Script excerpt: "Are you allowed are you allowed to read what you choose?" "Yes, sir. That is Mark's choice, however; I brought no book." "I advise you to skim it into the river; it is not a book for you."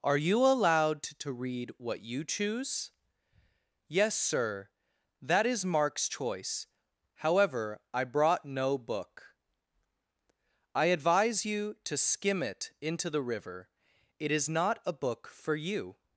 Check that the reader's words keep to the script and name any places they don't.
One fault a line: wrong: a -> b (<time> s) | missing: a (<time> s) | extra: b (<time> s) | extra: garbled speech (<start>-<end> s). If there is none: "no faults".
missing: are you allowed (1.0 s)